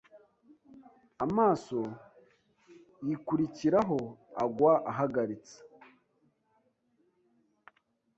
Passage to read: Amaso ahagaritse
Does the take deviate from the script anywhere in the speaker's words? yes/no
yes